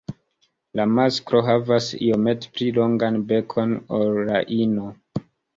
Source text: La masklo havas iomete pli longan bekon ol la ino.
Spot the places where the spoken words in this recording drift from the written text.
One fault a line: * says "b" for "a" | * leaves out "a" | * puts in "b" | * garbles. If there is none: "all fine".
all fine